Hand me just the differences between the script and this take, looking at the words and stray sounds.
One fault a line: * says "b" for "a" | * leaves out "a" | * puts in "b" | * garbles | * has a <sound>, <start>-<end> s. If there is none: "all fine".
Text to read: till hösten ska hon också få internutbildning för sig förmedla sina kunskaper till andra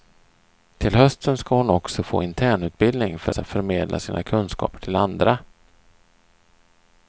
all fine